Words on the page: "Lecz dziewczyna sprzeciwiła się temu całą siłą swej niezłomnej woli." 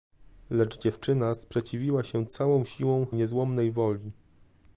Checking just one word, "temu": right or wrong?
wrong